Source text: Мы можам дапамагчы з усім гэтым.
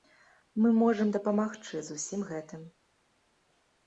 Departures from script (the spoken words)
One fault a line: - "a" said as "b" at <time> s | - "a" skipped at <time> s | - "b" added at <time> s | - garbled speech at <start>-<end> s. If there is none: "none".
none